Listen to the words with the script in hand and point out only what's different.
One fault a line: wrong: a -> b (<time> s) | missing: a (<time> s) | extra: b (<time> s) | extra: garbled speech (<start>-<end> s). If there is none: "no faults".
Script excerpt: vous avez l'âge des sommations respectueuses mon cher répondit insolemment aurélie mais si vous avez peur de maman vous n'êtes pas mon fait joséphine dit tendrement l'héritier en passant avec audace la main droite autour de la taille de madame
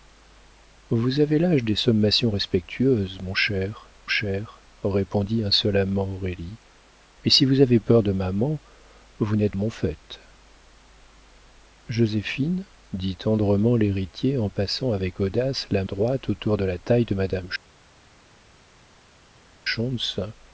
extra: cher (4.1 s)
missing: pas (9.6 s)
missing: main (15.8 s)